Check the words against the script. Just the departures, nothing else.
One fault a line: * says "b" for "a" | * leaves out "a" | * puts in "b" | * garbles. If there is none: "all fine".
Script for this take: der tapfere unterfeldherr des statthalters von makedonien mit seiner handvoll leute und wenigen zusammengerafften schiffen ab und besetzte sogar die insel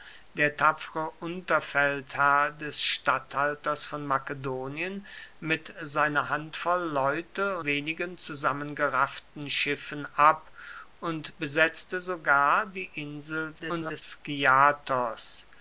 * leaves out "und"
* garbles